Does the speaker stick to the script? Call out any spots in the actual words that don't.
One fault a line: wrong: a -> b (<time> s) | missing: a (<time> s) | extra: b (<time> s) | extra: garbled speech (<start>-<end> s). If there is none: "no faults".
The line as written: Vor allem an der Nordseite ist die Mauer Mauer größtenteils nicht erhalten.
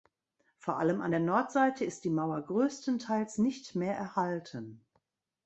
missing: Mauer (2.4 s)
extra: mehr (3.7 s)